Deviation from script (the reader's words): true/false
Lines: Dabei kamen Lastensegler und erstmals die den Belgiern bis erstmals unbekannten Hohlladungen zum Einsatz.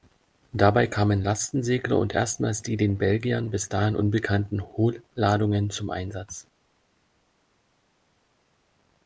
true